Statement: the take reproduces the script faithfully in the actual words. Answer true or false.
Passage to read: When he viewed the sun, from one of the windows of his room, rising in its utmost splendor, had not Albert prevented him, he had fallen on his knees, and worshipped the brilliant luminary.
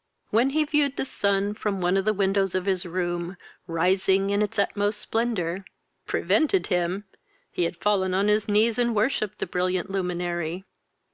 false